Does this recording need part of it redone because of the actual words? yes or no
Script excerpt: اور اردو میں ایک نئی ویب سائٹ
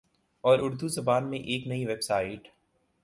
yes